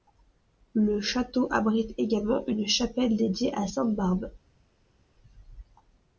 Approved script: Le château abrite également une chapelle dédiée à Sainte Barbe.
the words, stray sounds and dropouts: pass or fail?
pass